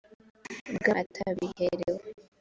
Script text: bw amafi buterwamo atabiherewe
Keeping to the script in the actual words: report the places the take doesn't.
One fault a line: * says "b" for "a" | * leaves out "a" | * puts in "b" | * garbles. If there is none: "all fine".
* leaves out "amafi buterwamo"